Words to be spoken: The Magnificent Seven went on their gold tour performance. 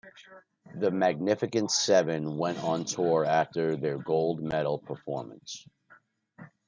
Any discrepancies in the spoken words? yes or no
yes